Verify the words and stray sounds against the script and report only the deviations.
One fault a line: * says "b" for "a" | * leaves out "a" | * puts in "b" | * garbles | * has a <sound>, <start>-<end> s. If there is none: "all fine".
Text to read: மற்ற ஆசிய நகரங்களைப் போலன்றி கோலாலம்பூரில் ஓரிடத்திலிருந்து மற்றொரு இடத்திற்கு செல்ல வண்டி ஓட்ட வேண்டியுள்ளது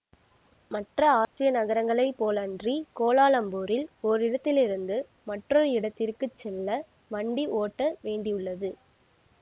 * has a dropout, 1.2-1.4 s